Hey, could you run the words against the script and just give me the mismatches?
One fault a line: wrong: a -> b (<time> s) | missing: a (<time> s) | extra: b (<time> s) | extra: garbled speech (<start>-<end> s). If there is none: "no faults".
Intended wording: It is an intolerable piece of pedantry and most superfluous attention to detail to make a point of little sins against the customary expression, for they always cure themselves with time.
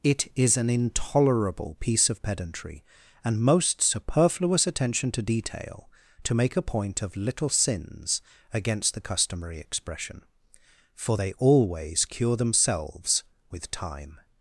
no faults